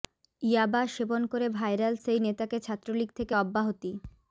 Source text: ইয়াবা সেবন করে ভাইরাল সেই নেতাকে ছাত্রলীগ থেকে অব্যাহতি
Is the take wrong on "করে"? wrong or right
right